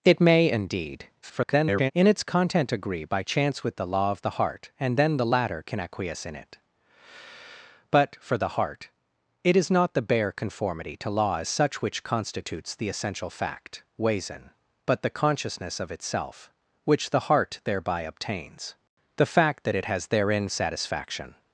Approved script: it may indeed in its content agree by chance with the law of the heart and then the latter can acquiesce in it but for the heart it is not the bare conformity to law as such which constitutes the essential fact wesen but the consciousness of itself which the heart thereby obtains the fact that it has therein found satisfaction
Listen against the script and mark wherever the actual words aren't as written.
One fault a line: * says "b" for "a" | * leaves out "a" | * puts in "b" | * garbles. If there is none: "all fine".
* garbles
* leaves out "found"